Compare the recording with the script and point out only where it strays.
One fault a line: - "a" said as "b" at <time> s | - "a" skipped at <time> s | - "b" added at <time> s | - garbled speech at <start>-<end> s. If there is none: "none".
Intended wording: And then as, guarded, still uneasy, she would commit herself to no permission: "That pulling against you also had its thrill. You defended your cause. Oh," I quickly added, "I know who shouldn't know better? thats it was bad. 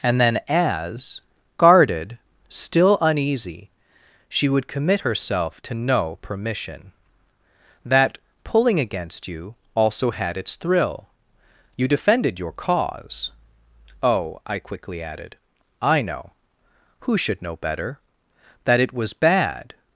- "shouldn't" said as "should" at 17.2 s
- "thats" said as "that" at 18.6 s